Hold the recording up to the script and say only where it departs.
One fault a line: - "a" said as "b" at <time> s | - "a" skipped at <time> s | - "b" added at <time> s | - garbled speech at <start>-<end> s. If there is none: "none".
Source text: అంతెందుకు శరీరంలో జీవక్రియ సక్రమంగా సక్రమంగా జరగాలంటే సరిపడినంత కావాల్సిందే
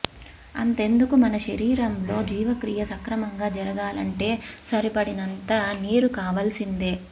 - "మన" added at 1.1 s
- "సక్రమంగా" skipped at 3.5 s
- "నీరు" added at 5.8 s